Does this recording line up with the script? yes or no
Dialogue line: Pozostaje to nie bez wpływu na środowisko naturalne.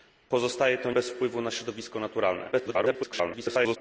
no